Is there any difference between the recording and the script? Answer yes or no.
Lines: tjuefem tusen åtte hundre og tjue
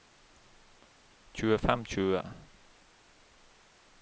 yes